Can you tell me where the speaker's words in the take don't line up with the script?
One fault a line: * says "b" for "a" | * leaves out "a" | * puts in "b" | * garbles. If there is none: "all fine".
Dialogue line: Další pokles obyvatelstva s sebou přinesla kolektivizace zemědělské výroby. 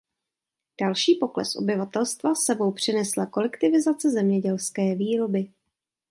all fine